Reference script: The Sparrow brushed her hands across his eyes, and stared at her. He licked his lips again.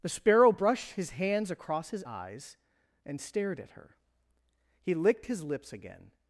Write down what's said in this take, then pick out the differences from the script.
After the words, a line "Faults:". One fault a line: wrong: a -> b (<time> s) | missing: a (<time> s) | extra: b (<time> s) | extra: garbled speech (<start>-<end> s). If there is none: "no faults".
The Sparrow brushed his hands across his eyes, and stared at her. He licked his lips again.
Faults:
wrong: her -> his (0.9 s)